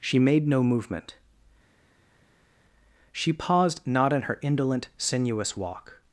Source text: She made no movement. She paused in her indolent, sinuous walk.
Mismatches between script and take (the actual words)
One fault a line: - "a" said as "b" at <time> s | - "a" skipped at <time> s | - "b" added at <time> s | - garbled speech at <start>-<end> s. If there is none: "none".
- "not" added at 3.8 s